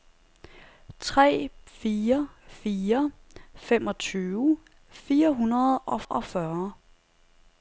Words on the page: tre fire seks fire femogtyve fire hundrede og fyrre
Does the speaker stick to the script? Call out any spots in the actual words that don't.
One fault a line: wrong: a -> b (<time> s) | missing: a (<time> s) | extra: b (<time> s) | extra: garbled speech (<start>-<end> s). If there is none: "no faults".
missing: seks (2.3 s)
extra: og (6.0 s)